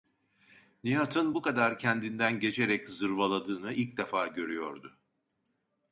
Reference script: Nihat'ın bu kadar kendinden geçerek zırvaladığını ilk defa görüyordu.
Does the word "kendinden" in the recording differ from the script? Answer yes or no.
no